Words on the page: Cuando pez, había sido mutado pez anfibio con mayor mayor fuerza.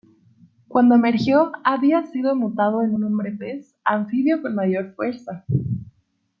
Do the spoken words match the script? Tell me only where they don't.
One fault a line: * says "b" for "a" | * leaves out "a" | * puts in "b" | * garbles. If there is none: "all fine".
* says "emergió" for "pez"
* puts in "en un hombre"
* leaves out "mayor"